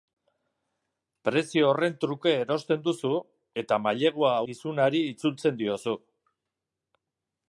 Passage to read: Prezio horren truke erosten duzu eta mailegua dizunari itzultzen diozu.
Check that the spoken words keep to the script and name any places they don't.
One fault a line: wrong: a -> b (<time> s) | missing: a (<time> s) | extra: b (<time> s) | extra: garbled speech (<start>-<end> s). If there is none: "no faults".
no faults